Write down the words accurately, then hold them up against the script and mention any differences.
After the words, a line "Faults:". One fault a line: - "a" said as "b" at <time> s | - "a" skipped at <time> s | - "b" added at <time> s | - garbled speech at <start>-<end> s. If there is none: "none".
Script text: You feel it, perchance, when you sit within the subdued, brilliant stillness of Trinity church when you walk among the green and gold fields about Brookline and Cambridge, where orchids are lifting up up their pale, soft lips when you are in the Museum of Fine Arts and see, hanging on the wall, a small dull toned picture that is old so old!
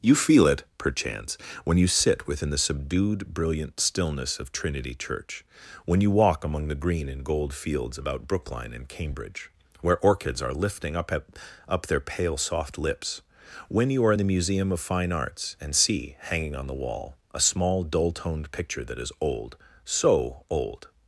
You feel it, perchance, when you sit within the subdued, brilliant stillness of Trinity church when you walk among the green and gold fields about Brookline and Cambridge, where orchids are lifting up up their pale, soft lips when you are in the Museum of Fine Arts and see, hanging on the wall, a small dull toned picture that is old so old!
Faults:
none